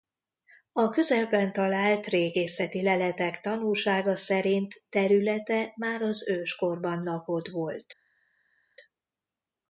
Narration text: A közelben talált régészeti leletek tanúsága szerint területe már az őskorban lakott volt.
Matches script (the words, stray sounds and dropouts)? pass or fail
pass